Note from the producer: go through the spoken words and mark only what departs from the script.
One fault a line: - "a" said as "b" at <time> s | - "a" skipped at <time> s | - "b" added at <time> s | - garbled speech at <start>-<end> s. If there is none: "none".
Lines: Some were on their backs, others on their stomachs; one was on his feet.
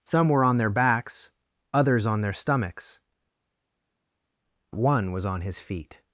none